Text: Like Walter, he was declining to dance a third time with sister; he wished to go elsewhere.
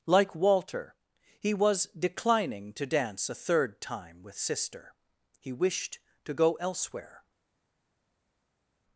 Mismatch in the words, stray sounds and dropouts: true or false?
false